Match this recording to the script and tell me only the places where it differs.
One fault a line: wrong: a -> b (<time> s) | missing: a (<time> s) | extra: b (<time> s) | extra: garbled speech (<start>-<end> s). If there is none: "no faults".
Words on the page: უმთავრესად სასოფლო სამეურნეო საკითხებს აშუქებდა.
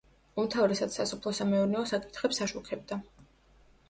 no faults